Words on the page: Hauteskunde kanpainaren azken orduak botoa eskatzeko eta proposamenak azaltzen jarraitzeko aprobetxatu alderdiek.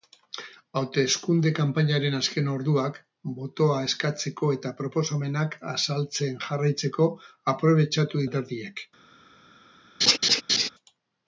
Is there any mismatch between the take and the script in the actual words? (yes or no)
no